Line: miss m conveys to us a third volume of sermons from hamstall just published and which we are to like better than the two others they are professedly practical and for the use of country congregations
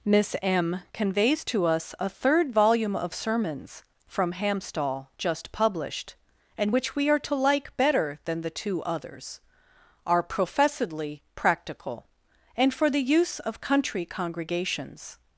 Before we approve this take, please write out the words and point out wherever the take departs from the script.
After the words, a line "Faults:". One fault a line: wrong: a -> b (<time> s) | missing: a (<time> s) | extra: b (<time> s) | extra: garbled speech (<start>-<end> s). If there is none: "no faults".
miss m conveys to us a third volume of sermons from hamstall just published and which we are to like better than the two others are professedly practical and for the use of country congregations
Faults:
missing: they (9.4 s)